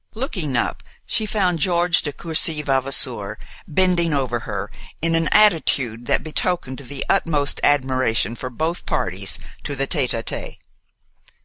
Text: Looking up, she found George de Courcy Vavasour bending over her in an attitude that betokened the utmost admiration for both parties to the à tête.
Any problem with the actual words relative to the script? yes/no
yes